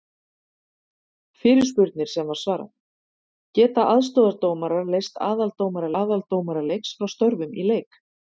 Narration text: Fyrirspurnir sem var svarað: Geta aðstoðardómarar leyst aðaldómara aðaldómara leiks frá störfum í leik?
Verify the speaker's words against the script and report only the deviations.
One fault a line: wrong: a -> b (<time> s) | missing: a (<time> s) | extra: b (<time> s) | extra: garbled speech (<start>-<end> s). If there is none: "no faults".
no faults